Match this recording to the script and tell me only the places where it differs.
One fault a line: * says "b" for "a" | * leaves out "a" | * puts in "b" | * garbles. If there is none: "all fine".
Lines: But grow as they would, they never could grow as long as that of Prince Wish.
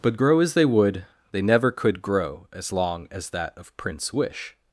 all fine